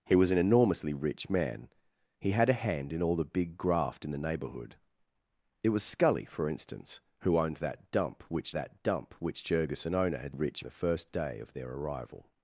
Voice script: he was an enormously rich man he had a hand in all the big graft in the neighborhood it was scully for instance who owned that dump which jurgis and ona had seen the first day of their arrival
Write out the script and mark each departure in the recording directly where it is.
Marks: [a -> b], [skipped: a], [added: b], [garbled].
he was an enormously rich man he had a hand in all the big graft in the neighborhood it was scully for instance who owned that dump which [added: that dump which] jurgis and ona had [seen -> rich] the first day of their arrival